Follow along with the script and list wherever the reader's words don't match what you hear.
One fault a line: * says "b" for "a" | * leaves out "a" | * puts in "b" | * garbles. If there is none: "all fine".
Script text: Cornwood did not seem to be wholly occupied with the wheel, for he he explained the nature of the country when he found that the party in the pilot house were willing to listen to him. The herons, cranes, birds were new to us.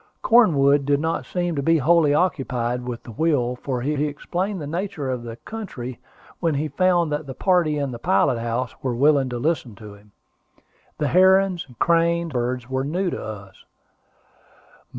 all fine